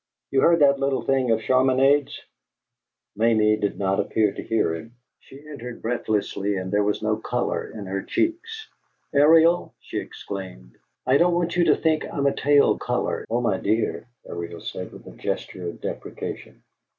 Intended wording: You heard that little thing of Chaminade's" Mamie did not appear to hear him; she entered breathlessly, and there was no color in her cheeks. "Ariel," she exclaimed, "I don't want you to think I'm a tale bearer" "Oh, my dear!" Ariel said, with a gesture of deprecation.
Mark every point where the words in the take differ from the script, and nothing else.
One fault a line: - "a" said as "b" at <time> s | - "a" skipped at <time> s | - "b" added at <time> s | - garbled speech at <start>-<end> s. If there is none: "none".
- "bearer" said as "color" at 12.7 s